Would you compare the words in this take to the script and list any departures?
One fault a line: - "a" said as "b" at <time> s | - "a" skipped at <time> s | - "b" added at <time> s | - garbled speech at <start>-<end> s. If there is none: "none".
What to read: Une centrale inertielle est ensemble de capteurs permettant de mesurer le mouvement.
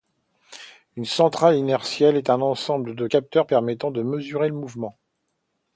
- "un" added at 2.3 s